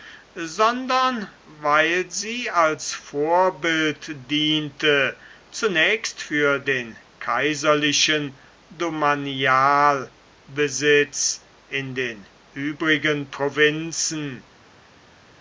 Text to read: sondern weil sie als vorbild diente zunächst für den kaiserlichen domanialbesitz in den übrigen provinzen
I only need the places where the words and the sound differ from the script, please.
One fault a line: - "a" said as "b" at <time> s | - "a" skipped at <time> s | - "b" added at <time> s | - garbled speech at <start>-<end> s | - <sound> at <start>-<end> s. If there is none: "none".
none